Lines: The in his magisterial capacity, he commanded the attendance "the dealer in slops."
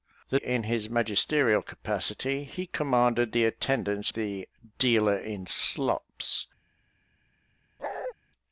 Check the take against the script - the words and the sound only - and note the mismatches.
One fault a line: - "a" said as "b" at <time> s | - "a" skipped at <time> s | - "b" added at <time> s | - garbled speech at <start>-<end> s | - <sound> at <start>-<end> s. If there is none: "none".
- bark at 7.8-8.1 s